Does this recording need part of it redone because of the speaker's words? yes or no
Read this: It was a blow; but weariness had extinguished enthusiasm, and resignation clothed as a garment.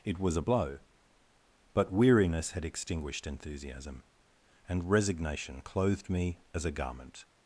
yes